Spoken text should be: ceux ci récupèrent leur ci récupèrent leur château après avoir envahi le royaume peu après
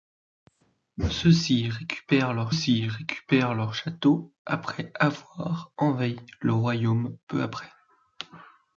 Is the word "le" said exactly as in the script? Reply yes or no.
yes